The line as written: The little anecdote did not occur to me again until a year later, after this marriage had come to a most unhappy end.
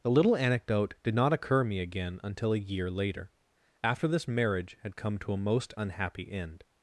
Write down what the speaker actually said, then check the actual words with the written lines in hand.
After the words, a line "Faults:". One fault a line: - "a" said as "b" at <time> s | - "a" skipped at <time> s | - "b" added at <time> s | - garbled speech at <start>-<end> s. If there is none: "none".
The little anecdote did not occur me again until a year later, after this marriage had come to a most unhappy end.
Faults:
- "to" skipped at 1.6 s